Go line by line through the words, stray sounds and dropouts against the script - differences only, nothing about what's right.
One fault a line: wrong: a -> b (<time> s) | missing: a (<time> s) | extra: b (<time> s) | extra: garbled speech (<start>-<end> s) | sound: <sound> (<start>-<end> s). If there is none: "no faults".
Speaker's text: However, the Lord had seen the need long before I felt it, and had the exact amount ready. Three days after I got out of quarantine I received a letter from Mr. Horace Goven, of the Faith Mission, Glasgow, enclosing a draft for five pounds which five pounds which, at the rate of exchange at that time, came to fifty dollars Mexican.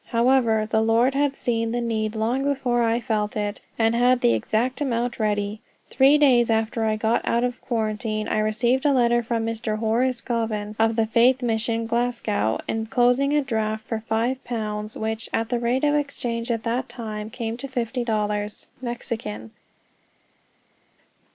missing: five pounds which (15.3 s)